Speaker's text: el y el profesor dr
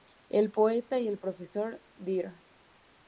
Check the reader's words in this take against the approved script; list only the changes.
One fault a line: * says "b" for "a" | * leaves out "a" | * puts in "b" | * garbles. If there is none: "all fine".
* puts in "poeta"